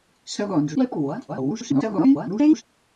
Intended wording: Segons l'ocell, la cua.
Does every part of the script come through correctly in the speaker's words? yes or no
no